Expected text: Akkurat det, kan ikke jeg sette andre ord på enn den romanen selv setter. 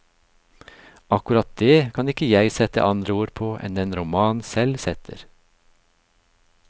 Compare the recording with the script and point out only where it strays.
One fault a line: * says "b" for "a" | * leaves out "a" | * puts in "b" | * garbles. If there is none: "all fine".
all fine